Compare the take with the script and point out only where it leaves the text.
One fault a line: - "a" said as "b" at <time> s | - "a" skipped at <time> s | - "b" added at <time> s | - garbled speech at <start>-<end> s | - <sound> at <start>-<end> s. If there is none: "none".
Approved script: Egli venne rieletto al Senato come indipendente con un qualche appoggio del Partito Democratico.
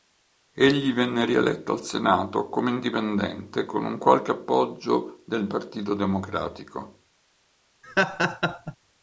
- laugh at 7.8-8.8 s